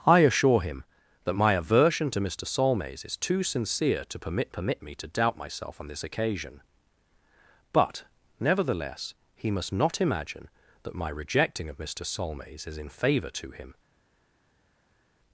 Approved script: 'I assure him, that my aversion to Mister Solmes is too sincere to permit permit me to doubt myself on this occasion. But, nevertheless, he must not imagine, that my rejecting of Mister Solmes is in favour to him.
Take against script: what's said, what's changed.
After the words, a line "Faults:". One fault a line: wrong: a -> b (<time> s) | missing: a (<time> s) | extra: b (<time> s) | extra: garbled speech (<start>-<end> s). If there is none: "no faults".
'I assure him, that my aversion to Mister Solmes is too sincere to permit permit me to doubt myself on this occasion. But, nevertheless, he must not imagine, that my rejecting of Mister Solmes is in favour to him.
Faults:
no faults